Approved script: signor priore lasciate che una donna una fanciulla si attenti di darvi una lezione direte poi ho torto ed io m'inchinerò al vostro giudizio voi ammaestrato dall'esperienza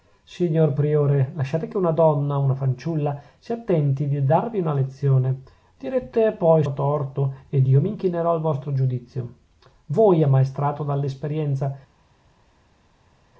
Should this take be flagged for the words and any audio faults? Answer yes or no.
no